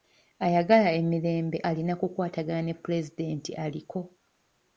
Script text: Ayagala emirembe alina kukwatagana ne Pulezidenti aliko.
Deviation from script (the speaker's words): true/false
false